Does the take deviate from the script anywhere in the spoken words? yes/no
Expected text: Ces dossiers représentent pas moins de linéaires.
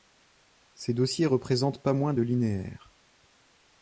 no